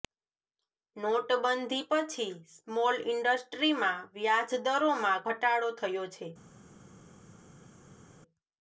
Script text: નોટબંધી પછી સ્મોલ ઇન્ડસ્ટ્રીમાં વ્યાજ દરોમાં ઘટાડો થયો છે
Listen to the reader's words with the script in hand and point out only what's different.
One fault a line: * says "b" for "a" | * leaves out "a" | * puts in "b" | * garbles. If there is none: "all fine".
all fine